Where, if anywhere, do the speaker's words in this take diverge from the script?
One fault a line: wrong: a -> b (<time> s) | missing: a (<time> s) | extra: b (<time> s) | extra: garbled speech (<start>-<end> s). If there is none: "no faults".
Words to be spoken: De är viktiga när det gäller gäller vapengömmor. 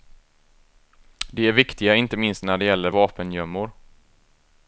extra: inte minst (1.9 s)
missing: gäller (2.9 s)